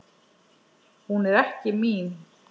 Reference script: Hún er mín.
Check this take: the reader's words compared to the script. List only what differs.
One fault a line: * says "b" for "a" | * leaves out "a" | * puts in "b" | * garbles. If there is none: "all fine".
* puts in "ekki"